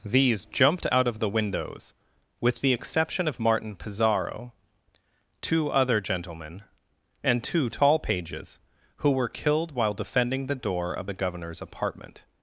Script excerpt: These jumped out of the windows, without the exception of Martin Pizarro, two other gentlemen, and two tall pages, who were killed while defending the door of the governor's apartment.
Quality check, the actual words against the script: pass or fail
fail